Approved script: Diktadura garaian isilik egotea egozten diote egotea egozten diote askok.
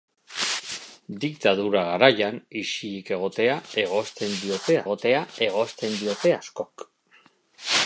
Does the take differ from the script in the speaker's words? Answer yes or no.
no